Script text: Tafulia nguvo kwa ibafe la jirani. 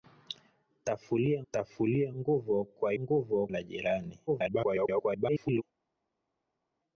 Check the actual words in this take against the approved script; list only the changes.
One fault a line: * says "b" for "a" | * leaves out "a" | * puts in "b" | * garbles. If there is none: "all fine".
* puts in "tafulia"
* says "nguvo" for "ibafe"
* garbles